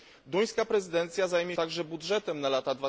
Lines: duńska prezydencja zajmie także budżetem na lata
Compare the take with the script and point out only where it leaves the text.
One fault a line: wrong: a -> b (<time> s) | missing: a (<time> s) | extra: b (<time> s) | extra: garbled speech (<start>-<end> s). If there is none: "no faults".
no faults